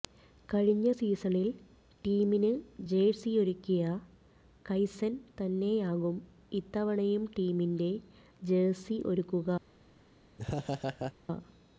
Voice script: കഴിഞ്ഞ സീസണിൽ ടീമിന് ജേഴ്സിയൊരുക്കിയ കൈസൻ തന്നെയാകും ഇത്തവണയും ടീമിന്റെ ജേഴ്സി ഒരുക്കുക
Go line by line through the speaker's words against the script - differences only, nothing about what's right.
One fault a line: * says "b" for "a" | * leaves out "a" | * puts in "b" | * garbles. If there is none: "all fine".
all fine